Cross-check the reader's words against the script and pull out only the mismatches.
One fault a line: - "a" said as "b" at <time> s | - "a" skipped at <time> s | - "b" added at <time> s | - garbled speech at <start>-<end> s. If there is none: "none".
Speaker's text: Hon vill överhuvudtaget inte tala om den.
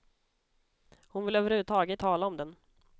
- "inte" skipped at 2.0 s